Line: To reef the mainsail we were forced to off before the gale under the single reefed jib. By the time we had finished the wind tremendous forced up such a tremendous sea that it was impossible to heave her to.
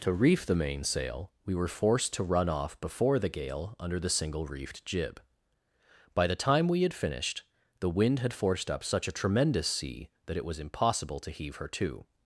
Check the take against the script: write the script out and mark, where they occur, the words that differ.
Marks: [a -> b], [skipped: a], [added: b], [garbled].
To reef the mainsail we were forced to [added: run] off before the gale under the single reefed jib. By the time we had finished the wind [tremendous -> had] forced up such a tremendous sea that it was impossible to heave her to.